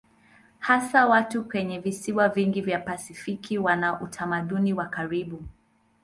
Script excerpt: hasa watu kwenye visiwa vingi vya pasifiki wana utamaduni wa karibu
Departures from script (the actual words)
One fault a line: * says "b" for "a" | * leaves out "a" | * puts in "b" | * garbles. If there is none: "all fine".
all fine